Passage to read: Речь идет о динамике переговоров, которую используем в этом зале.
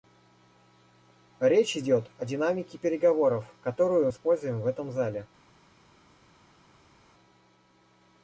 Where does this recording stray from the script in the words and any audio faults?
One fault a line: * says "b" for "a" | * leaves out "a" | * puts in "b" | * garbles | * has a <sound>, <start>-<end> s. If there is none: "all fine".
all fine